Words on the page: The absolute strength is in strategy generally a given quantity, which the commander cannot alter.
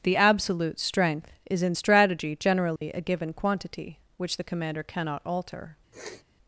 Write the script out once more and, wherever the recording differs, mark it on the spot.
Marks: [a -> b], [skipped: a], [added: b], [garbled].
The absolute strength is in strategy generally a given quantity, which the commander cannot alter.